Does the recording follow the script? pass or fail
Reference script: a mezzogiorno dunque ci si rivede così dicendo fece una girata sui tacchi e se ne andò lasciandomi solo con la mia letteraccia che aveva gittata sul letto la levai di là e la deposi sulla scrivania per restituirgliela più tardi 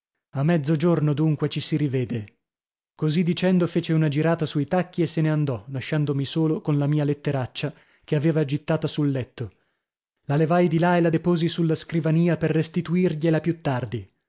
pass